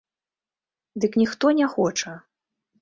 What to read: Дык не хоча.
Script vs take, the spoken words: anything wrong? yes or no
yes